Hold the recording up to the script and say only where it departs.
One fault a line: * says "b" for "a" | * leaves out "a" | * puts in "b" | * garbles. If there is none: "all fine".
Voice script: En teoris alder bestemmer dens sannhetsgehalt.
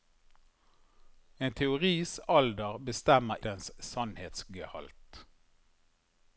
all fine